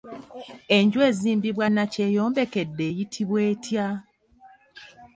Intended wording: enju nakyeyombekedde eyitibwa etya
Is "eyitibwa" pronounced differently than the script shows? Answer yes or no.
no